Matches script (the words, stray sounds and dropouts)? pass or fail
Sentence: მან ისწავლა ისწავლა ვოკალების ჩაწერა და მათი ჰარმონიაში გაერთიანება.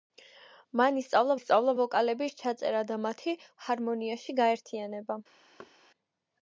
fail